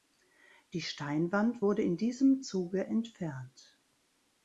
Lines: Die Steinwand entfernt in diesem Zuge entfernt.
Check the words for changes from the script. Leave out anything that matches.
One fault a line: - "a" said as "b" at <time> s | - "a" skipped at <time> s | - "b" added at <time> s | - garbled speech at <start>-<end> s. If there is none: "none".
- "entfernt" said as "wurde" at 1.6 s